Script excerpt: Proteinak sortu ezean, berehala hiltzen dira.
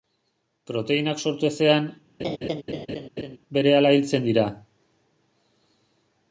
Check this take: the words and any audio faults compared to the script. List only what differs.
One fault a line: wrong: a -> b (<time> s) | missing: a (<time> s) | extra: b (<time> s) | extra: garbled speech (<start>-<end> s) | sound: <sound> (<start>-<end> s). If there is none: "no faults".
sound: laugh (2.2-3.4 s)